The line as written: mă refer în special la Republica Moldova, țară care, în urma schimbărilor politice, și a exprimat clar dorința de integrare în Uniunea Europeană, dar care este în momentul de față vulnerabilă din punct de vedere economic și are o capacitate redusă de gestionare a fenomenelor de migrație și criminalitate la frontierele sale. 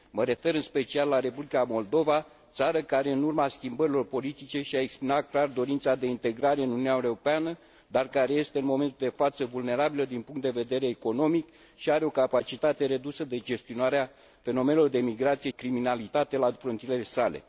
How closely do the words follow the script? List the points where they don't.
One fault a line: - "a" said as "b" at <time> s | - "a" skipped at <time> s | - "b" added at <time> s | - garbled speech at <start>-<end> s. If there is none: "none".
- "și" skipped at 15.5 s